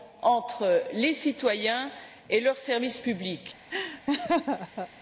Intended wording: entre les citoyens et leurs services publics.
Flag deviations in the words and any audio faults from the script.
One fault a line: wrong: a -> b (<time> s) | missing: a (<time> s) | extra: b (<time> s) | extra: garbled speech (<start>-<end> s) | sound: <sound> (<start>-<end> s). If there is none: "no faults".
sound: laugh (3.7-4.9 s)